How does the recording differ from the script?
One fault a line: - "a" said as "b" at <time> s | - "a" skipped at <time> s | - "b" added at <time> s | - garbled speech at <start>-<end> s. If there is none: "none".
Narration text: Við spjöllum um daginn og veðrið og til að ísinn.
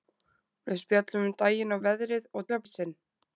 none